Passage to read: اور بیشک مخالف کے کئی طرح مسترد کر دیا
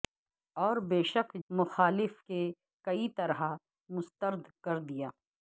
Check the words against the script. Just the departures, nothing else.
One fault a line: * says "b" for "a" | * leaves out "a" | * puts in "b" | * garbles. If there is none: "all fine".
all fine